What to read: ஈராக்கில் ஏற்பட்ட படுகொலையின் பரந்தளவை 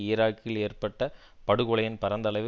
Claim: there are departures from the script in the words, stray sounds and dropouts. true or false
false